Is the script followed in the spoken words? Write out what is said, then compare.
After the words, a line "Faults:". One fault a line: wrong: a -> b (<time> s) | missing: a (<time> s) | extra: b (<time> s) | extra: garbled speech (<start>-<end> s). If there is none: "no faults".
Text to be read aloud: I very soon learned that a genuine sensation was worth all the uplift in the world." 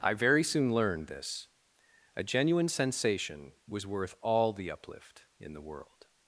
I very soon learned this a genuine sensation was worth all the uplift in the world."
Faults:
wrong: that -> this (1.1 s)